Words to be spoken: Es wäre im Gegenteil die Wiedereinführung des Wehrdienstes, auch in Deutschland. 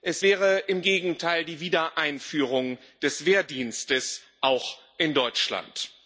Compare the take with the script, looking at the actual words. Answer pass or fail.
pass